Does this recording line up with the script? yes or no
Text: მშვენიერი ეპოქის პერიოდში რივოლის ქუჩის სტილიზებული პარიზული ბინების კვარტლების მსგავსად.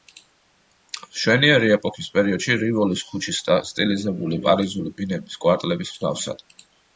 yes